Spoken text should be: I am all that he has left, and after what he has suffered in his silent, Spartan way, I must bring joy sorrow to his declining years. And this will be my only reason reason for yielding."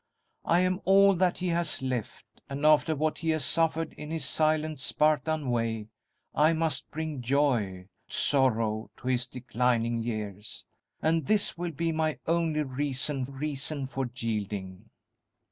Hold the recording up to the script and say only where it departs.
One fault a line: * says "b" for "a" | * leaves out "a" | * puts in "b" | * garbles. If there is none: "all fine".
all fine